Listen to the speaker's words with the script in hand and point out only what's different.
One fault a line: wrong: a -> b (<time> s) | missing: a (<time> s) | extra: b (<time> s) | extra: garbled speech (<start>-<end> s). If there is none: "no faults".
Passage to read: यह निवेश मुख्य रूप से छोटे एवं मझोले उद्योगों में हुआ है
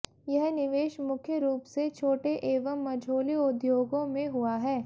no faults